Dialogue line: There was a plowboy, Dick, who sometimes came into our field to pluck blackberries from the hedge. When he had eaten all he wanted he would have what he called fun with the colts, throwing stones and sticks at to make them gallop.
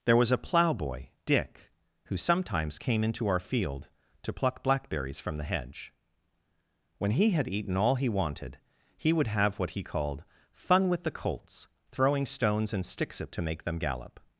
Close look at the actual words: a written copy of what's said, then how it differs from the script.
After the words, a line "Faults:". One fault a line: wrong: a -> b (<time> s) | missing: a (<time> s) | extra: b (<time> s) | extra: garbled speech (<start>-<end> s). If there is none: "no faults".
There was a plowboy, Dick, who sometimes came into our field to pluck blackberries from the hedge. When he had eaten all he wanted he would have what he called fun with the colts, throwing stones and sticks at to make them gallop.
Faults:
no faults